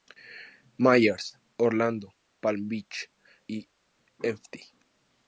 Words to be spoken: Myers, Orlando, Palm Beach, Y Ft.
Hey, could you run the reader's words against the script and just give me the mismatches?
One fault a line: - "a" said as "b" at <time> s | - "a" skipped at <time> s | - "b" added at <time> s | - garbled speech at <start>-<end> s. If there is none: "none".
none